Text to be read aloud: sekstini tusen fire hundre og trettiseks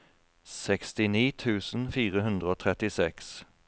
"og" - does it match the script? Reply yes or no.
yes